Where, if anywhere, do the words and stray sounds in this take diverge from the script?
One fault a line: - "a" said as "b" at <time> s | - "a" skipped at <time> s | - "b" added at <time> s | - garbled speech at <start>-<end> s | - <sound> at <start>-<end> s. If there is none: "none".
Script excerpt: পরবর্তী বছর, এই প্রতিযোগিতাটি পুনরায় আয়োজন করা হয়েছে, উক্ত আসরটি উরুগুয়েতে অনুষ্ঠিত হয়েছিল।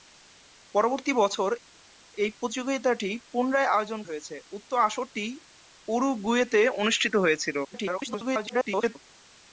- "করা" skipped at 4.0 s
- garbled speech at 7.6-9.0 s